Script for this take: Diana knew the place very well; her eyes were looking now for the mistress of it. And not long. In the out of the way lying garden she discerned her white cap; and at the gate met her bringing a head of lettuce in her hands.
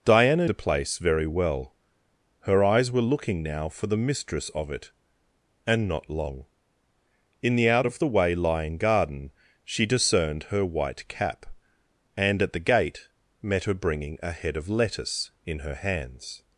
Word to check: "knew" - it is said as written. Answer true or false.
false